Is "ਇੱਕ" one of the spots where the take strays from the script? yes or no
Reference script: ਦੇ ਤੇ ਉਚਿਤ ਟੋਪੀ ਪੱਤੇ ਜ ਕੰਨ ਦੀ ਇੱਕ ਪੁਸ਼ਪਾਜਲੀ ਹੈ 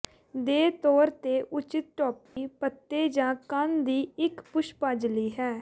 no